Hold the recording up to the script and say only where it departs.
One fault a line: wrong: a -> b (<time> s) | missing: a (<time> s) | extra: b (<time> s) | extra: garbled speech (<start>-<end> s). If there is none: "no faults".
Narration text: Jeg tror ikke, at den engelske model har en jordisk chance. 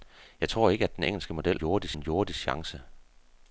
wrong: har -> jordisk (1.5 s)